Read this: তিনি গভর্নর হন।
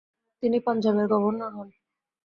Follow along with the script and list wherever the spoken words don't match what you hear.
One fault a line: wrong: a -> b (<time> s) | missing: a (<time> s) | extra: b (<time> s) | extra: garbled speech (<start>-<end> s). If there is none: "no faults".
extra: পাঞ্জাবের (0.7 s)